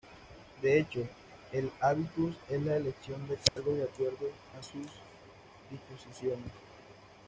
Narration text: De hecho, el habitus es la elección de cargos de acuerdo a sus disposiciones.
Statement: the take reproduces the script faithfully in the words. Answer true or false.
true